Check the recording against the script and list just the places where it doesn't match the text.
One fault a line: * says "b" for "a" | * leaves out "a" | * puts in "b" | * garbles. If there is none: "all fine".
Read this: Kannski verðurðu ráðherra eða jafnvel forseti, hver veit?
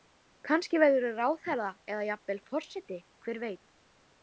all fine